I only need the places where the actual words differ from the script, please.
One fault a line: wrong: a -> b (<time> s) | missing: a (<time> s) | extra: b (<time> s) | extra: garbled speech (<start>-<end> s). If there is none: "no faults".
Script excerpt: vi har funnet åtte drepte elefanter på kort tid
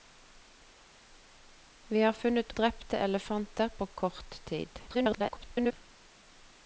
missing: åtte (2.5 s)
extra: garbled speech (4.9-5.7 s)